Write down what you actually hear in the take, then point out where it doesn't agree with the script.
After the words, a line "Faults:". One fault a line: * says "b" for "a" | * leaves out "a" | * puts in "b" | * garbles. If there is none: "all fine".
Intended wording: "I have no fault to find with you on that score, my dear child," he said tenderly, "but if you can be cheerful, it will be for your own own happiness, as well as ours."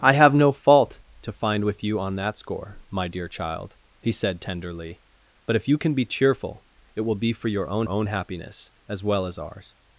"I have no fault to find with you on that score, my dear child," he said tenderly, "but if you can be cheerful, it will be for your own own happiness, as well as ours."
Faults:
all fine